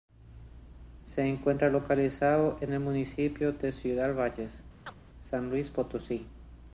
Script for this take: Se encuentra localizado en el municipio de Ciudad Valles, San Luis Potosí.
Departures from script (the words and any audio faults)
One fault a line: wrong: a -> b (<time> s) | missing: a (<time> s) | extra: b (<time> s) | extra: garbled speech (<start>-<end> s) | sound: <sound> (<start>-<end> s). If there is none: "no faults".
sound: chirp (4.9-5.0 s)